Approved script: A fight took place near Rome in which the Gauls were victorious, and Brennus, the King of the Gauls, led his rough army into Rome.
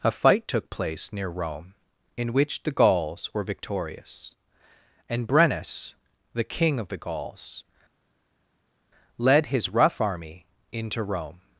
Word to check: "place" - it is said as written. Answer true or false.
true